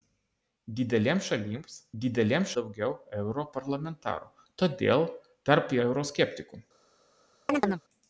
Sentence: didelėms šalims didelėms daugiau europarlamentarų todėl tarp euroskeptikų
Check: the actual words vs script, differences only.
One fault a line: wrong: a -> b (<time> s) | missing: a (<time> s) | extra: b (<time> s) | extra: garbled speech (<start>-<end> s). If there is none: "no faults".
no faults